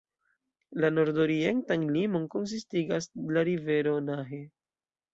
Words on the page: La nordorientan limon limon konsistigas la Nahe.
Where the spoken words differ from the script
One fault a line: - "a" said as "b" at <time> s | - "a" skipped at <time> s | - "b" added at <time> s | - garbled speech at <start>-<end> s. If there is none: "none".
- "limon" skipped at 2.3 s
- "rivero" added at 3.5 s